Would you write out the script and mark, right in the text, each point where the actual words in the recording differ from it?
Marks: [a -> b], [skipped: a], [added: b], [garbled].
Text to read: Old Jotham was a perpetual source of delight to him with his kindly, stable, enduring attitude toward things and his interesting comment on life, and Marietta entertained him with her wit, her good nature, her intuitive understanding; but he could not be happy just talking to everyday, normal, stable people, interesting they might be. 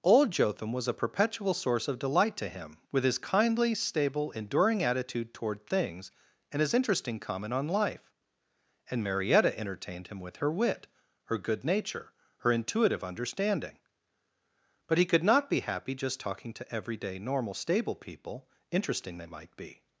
Old Jotham was a perpetual source of delight to him with his kindly, stable, enduring attitude toward things and his interesting comment on life, and Marietta entertained him with her wit, her good nature, her intuitive understanding; but he could not be happy just talking to everyday, normal, stable people, interesting they might be.